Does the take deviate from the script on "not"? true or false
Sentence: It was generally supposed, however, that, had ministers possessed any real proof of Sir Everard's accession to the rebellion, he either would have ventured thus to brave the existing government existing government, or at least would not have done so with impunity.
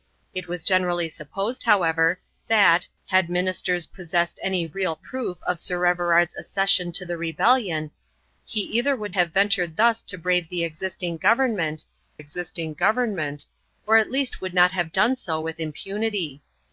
false